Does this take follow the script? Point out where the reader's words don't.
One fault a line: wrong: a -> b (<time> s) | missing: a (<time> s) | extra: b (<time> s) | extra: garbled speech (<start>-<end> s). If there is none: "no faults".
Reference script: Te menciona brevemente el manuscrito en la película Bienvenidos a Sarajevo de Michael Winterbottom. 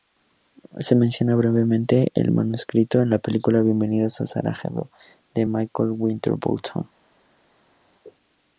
wrong: Te -> Se (0.8 s)